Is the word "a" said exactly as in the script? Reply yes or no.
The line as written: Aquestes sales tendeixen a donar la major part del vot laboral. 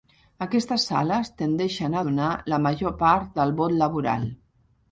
yes